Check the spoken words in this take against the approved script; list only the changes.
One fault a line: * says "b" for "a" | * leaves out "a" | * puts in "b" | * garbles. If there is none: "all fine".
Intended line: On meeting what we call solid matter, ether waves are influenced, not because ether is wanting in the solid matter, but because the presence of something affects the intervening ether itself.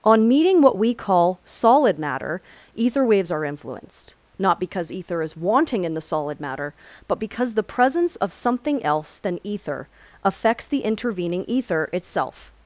* puts in "else than ether"